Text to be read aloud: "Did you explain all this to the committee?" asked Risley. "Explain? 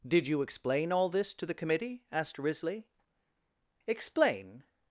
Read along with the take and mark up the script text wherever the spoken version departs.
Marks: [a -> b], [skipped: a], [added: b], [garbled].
"Did you explain all this to the committee?" asked Risley. "Explain?